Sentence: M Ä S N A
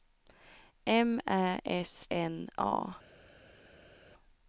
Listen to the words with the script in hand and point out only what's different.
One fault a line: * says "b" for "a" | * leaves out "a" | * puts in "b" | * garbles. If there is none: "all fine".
all fine